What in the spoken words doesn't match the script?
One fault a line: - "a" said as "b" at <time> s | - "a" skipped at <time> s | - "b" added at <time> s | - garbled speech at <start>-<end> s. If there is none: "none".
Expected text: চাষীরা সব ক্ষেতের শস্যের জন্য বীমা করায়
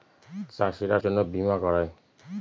- "সব ক্ষেতের শস্যের" skipped at 1.0 s